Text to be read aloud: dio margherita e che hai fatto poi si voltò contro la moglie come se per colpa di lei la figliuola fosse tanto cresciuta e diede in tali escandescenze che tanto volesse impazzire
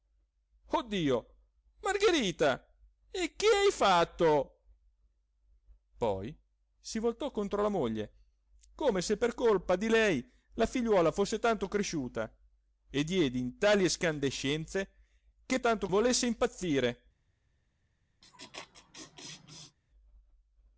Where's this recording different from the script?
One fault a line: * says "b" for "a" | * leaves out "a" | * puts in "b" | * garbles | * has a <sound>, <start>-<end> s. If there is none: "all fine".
* has a laugh, 18.2-19.8 s